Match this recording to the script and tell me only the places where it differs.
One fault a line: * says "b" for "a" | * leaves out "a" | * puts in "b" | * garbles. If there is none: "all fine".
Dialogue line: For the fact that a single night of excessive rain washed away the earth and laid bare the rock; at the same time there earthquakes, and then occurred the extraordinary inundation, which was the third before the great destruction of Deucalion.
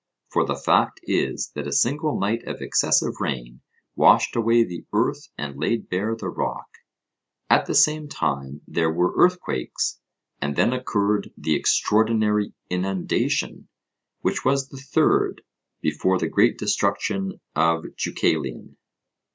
* puts in "is"
* puts in "were"